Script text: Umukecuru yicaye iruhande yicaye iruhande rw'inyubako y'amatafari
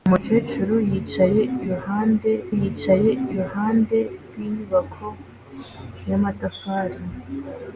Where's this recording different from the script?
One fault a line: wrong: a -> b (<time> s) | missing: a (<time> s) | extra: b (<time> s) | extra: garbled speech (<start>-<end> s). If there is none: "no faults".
no faults